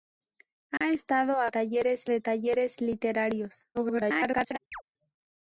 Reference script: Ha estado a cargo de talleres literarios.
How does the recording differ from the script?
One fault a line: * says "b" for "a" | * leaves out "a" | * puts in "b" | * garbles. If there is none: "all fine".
* says "talleres" for "cargo"
* garbles